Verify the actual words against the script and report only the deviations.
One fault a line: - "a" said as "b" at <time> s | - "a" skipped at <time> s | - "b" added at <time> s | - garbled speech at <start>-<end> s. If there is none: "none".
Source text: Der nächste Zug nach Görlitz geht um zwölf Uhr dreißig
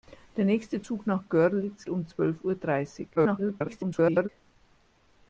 - "geht" skipped at 1.9 s
- garbled speech at 3.1-4.3 s